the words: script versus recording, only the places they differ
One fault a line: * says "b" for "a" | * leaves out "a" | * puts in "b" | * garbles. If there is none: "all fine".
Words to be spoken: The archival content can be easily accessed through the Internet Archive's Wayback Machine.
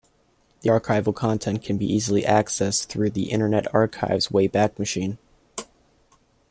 all fine